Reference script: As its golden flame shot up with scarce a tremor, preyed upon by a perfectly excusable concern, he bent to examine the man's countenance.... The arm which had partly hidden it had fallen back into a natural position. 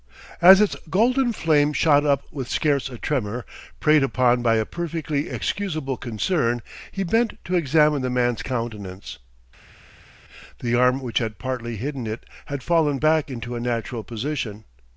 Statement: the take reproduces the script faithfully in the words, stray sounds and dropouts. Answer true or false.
true